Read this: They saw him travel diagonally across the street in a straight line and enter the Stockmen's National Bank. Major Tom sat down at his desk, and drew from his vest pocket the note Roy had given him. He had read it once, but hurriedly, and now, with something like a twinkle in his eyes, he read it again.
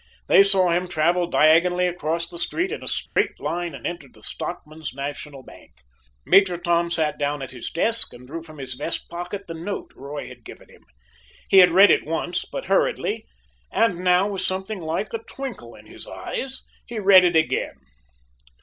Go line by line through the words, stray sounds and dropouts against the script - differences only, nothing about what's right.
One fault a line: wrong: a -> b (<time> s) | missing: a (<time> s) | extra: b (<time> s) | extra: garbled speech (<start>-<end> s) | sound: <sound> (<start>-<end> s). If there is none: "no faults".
sound: dropout (3.1-3.2 s)